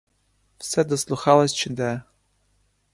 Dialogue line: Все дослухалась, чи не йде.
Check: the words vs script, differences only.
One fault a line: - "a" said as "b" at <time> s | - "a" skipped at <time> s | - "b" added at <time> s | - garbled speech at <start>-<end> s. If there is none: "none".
- "не" skipped at 1.7 s